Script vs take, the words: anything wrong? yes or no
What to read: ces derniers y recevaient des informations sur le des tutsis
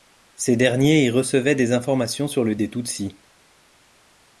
no